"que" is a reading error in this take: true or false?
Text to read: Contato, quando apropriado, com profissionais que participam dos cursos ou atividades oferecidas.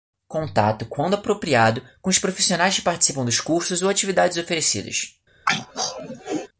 false